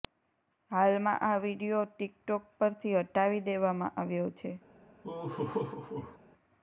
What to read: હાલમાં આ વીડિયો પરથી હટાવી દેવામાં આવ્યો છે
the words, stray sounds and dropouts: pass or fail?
fail